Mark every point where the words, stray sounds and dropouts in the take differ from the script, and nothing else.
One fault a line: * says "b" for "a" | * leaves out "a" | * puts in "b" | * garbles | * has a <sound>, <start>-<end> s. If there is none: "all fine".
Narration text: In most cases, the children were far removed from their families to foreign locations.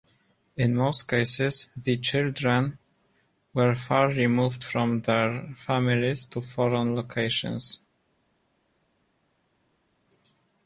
all fine